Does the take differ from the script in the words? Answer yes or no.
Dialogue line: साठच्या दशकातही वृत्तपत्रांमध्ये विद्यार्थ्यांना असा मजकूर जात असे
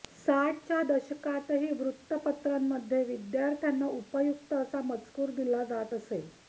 yes